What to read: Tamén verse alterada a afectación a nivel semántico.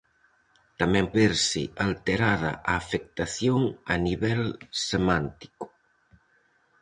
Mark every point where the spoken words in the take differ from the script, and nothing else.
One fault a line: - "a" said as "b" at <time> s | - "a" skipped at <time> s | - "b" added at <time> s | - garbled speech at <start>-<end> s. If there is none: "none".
none